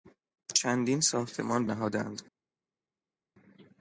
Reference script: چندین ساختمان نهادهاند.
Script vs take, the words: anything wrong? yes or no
no